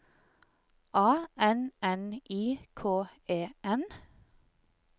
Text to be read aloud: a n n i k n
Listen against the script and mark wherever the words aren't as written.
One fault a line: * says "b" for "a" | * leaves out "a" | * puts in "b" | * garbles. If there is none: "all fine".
* puts in "e"